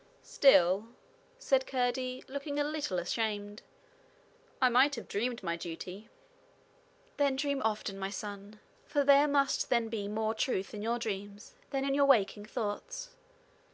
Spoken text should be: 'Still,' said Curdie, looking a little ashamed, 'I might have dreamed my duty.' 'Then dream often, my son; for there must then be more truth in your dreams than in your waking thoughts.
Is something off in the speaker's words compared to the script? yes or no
no